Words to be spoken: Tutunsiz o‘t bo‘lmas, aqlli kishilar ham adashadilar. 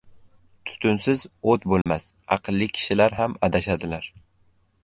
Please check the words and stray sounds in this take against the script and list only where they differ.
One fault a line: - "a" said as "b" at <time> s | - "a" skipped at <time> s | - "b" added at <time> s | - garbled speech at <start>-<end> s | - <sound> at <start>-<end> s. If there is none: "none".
- dropout at 1.8-1.9 s